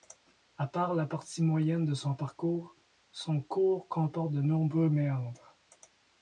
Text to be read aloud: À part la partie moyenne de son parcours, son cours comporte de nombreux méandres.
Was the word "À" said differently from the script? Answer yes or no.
no